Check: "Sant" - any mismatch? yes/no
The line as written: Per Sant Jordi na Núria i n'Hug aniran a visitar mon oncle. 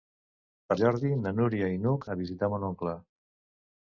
yes